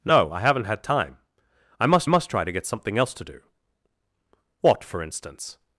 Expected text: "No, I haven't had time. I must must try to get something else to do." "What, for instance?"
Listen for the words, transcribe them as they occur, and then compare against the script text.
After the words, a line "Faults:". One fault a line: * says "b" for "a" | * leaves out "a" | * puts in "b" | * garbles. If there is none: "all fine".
"No, I haven't had time. I must must try to get something else to do." "What, for instance?"
Faults:
all fine